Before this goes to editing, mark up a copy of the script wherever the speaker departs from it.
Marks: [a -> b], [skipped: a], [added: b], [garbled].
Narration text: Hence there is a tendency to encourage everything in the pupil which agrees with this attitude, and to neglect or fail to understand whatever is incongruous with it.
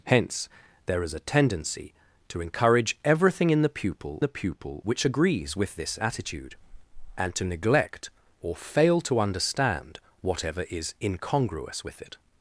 Hence there is a tendency to encourage everything in the pupil [added: the pupil] which agrees with this attitude, and to neglect or fail to understand whatever is incongruous with it.